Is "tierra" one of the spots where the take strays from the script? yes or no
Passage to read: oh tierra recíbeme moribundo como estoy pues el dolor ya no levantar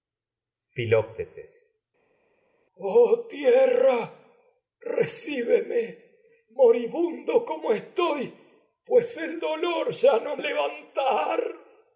no